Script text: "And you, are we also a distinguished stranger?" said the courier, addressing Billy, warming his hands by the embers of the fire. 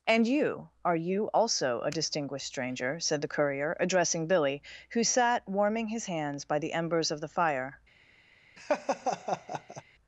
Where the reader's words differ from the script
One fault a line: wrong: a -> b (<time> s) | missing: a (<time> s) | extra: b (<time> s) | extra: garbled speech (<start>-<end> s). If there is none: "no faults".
wrong: we -> you (0.9 s)
extra: who sat (4.9 s)